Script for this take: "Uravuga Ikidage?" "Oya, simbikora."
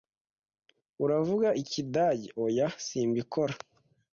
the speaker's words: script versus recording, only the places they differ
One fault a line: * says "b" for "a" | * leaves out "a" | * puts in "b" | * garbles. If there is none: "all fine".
all fine